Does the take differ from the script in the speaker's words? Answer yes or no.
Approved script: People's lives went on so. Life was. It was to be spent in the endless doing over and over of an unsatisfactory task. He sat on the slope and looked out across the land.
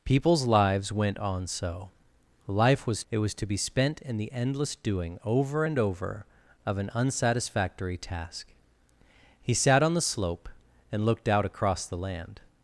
no